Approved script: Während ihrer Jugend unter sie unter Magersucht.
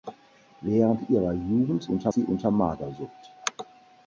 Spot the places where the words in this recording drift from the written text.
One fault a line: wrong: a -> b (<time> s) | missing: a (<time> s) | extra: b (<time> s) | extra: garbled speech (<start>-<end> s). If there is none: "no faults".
no faults